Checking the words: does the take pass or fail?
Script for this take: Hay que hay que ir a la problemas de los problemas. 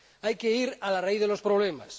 fail